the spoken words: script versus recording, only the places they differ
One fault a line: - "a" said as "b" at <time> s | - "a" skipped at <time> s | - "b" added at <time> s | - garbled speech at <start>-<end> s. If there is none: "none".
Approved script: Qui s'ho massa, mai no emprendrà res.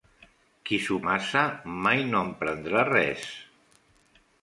none